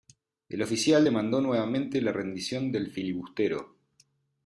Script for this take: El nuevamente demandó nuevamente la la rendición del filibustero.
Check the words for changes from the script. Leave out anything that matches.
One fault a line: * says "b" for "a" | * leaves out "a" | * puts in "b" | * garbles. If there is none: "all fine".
* says "oficial" for "nuevamente"
* leaves out "la"